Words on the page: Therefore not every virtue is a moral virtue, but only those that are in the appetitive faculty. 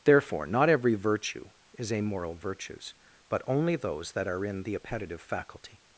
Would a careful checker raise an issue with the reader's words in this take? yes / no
yes